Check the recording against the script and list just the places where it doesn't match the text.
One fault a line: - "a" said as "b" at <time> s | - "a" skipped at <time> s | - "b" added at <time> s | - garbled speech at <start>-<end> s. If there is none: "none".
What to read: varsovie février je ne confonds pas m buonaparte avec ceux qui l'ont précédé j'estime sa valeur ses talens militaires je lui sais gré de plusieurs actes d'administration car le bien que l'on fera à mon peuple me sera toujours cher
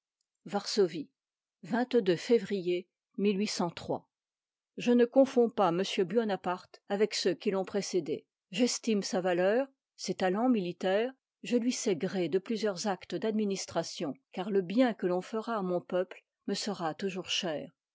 none